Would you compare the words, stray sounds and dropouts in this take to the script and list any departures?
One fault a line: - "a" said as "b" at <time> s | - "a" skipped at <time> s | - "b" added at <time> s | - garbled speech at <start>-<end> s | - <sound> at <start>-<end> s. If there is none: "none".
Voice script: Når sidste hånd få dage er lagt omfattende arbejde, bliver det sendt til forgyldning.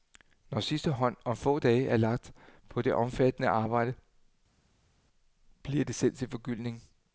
- "om" added at 1.2 s
- "på det" added at 2.7 s